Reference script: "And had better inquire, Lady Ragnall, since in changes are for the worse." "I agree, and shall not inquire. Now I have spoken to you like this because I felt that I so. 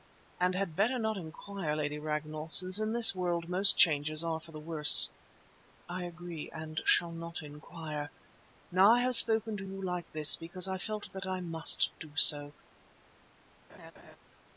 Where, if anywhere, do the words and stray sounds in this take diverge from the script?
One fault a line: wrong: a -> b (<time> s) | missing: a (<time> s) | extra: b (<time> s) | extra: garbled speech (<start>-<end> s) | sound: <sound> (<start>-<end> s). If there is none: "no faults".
extra: not (1.0 s)
extra: this world most (2.9 s)
extra: must do (11.4 s)
sound: laugh (13.7-14.2 s)